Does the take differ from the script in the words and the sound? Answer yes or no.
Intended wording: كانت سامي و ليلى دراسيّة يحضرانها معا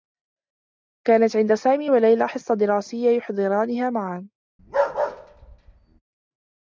yes